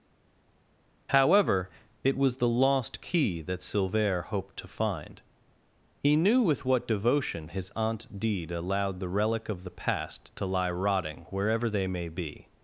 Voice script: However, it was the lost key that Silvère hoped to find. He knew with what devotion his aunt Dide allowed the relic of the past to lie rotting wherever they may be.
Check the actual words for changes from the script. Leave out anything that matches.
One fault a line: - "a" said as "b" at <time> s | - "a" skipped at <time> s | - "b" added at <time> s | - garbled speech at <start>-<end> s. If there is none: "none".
none